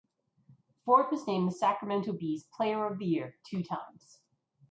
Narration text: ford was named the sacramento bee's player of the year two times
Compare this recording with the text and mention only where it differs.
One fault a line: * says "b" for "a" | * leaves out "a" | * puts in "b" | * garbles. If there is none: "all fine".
all fine